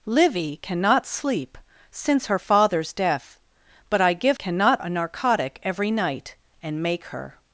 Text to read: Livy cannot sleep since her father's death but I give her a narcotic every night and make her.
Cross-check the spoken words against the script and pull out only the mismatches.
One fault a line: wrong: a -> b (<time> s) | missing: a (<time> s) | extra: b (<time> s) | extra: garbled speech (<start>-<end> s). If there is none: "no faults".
wrong: her -> cannot (4.4 s)